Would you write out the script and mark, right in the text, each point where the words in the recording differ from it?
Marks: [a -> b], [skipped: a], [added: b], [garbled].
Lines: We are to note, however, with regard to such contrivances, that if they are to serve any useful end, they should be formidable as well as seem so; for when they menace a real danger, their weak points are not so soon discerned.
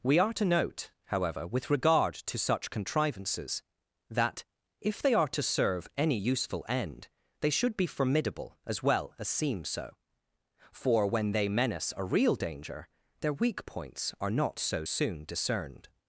We are to note, however, with regard to such contrivances, that if they are to serve any useful end, they should be formidable as well as seem so; for when they menace a real danger, their weak points are not so soon discerned.